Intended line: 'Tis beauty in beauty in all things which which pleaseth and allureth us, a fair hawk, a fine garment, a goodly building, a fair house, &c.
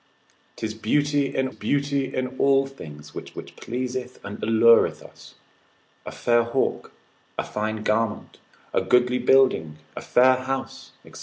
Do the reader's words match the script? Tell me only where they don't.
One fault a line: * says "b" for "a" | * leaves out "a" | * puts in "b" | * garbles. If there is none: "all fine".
all fine